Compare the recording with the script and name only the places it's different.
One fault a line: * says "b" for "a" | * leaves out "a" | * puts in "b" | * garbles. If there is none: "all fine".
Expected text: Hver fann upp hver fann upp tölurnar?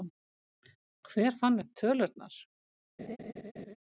* leaves out "hver fann upp"